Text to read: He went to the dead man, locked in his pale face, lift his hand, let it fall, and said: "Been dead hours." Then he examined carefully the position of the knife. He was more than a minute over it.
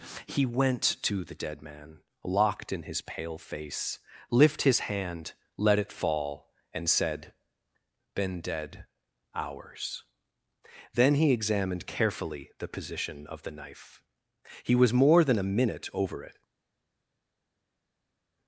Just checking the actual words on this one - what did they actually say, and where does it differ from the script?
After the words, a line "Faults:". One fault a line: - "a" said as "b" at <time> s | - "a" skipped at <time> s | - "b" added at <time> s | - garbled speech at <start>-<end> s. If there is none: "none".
He went to the dead man, locked in his pale face, lift his hand, let it fall, and said: "Been dead hours." Then he examined carefully the position of the knife. He was more than a minute over it.
Faults:
none